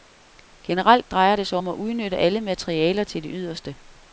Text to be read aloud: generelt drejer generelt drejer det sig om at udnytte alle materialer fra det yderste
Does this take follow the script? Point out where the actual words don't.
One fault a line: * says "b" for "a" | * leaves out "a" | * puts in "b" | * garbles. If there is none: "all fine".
* leaves out "generelt drejer"
* says "til" for "fra"